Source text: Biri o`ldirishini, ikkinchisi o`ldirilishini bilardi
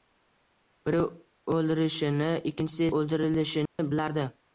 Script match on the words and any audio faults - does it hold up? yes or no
no